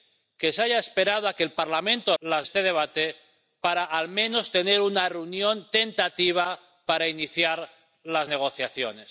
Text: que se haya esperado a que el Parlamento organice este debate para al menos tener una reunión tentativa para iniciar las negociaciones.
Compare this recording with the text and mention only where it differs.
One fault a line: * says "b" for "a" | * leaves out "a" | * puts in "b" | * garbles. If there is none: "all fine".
* says "las" for "organice"